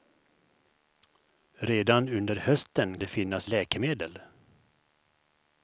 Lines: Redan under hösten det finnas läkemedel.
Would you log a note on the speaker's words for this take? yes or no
no